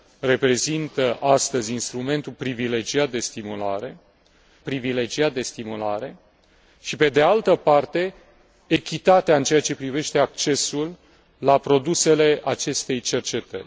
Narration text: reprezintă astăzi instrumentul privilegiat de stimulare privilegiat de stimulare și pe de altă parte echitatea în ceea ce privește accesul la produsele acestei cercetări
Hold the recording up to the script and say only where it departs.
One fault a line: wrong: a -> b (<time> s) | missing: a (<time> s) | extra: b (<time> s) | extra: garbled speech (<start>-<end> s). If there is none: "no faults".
no faults